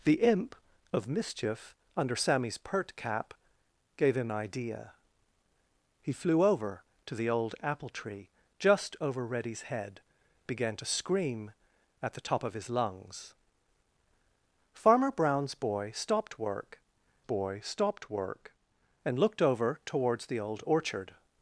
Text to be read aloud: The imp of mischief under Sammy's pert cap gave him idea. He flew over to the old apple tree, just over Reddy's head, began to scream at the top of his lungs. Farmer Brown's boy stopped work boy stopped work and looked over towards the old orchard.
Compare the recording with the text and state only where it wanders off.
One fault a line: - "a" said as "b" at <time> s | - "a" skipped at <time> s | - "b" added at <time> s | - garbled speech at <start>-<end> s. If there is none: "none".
none